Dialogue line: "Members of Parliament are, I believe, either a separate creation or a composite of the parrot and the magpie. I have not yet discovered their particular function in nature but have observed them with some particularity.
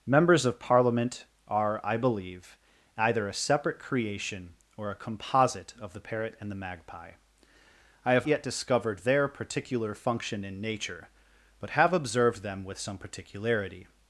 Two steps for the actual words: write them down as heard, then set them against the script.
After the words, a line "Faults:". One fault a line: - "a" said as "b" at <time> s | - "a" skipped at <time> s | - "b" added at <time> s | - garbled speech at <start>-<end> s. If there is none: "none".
"Members of Parliament are, I believe, either a separate creation or a composite of the parrot and the magpie. I have yet discovered their particular function in nature but have observed them with some particularity.
Faults:
- "not" skipped at 8.3 s